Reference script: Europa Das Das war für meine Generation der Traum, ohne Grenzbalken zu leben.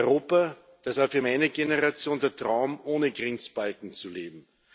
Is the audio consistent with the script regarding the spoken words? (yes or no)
no